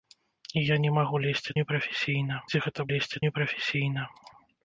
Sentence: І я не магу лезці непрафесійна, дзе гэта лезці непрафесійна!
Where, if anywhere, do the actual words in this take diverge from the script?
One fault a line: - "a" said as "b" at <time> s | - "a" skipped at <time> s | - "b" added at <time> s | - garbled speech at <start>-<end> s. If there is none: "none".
none